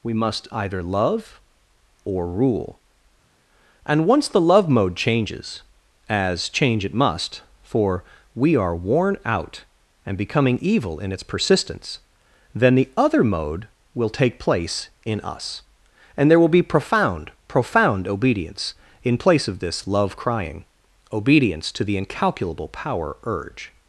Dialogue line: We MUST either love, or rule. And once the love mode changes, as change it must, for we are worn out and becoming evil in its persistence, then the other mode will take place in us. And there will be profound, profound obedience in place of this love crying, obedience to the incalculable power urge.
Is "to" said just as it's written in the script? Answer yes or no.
yes